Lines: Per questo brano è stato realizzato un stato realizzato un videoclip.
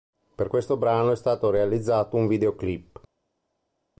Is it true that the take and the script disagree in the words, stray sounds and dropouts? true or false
true